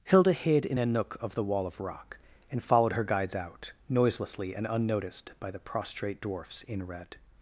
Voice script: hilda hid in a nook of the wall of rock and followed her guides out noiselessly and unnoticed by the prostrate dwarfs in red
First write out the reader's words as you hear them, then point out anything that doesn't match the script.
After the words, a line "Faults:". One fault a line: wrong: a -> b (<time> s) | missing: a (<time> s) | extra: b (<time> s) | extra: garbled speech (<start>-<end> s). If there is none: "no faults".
hilda hid in a nook of the wall of rock and followed her guides out noiselessly and unnoticed by the prostrate dwarfs in red
Faults:
no faults